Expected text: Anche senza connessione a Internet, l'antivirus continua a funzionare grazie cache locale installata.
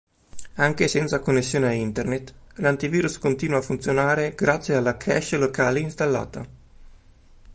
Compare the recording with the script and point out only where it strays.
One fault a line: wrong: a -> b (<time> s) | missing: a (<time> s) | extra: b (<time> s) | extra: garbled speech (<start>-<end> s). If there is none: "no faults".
extra: alla (4.8 s)